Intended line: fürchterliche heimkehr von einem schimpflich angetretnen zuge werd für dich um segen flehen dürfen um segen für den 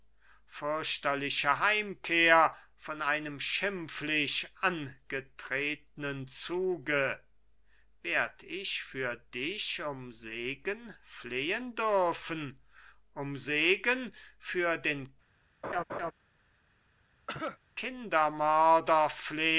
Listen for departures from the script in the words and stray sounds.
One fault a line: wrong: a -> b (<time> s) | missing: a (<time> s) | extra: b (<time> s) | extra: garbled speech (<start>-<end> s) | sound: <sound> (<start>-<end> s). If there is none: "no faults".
extra: ich (8.4 s)
sound: laugh (15.6-16.1 s)
sound: cough (17.3-17.6 s)